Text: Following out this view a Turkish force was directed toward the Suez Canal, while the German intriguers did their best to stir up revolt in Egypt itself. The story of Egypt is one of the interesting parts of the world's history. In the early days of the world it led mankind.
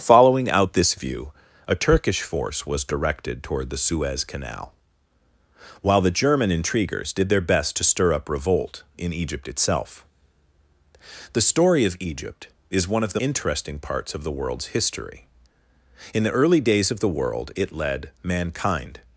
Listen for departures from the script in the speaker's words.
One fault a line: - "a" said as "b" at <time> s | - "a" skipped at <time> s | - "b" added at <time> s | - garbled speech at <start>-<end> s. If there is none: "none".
none